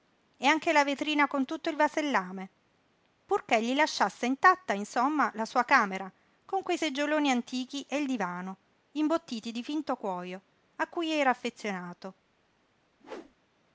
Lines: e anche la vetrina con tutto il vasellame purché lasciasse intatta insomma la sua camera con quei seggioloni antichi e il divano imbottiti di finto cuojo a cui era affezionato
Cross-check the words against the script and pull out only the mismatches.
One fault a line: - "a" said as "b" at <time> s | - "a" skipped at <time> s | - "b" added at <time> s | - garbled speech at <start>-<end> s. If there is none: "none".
- "gli" added at 3.6 s